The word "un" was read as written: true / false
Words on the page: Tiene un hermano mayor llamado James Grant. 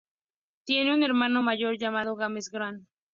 true